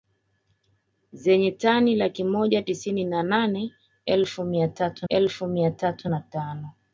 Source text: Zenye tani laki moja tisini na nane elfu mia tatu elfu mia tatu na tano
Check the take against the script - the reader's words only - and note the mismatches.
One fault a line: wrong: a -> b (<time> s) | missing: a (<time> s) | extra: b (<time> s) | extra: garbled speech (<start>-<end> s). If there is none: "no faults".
no faults